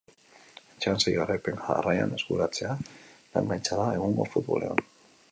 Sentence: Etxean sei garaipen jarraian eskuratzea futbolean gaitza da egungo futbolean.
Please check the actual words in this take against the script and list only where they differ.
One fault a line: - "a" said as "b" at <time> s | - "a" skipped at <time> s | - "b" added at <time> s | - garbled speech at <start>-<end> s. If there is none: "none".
- "futbolean" said as "lan" at 3.4 s